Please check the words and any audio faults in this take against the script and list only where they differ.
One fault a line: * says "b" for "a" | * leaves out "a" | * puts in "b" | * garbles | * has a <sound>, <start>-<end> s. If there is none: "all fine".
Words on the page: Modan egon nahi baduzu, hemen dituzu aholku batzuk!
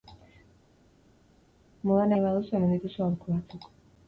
* leaves out "egon"